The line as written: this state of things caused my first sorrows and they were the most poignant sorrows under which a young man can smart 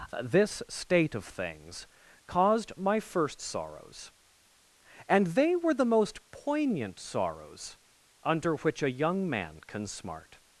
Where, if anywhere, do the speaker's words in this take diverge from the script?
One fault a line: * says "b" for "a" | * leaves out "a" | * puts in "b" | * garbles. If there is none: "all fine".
all fine